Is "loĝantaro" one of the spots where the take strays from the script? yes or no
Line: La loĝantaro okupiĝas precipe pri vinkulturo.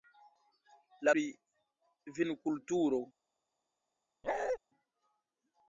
yes